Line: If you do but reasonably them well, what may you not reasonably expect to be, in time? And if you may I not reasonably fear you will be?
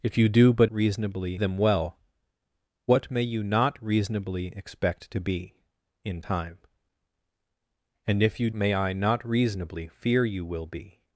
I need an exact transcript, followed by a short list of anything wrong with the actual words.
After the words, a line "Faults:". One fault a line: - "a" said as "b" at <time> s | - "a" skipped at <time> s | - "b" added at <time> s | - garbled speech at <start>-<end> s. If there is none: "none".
If you do but reasonably them well, what may you not reasonably expect to be, in time? And if you may I not reasonably fear you will be?
Faults:
none